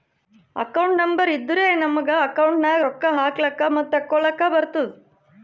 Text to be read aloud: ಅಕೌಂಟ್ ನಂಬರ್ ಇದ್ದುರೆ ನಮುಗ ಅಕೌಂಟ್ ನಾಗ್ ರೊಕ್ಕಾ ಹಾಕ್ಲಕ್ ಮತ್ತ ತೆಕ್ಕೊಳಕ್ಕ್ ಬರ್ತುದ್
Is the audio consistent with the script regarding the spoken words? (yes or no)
yes